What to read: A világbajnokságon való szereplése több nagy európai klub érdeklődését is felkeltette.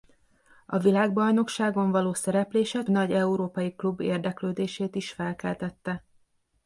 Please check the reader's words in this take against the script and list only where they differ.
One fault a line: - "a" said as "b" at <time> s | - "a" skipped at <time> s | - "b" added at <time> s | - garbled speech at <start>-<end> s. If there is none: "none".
- "több" skipped at 2.8 s